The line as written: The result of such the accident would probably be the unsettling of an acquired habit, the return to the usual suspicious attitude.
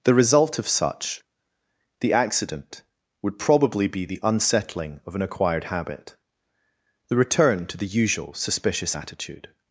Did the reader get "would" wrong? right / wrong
right